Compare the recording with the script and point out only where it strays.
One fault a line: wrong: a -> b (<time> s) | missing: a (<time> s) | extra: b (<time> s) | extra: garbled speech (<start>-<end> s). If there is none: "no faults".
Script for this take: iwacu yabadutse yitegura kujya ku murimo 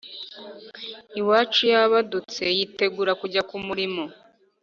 no faults